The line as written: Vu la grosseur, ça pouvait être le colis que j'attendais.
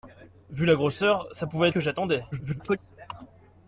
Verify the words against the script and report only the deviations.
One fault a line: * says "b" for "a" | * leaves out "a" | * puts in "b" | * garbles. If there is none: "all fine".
* leaves out "être le colis"
* garbles